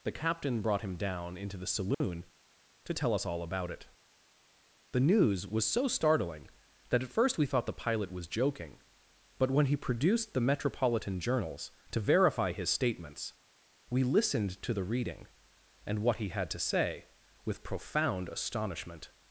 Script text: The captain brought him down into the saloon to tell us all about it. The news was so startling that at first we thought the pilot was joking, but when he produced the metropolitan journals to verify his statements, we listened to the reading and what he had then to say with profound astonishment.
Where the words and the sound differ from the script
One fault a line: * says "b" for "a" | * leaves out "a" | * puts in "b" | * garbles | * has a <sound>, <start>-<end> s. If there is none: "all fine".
* has a dropout, 1.9-2.0 s
* leaves out "then"